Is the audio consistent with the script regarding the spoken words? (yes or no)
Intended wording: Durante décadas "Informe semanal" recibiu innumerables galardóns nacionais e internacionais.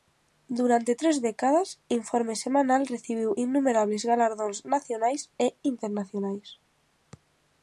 no